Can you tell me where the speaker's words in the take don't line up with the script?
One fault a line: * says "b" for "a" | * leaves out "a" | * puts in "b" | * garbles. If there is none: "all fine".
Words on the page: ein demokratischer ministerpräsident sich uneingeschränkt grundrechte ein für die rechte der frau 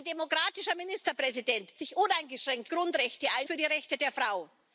all fine